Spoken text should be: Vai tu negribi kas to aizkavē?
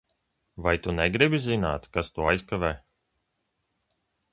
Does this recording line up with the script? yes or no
no